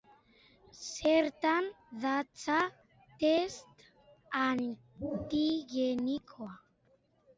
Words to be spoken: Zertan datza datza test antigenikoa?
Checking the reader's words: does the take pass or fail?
fail